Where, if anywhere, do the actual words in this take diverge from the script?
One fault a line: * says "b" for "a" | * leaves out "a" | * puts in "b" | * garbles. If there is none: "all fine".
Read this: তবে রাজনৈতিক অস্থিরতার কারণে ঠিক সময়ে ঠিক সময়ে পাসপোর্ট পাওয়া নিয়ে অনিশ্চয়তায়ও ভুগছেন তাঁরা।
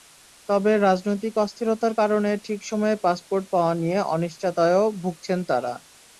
* leaves out "ঠিক সময়ে"